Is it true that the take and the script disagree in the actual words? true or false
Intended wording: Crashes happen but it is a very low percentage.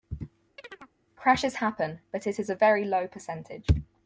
false